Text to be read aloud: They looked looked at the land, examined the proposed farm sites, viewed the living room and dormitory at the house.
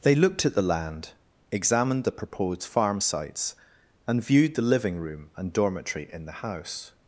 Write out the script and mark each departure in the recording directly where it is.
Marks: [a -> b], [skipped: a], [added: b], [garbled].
They looked [skipped: looked] at the land, examined the proposed farm sites, [added: and] viewed the living room and dormitory [at -> in] the house.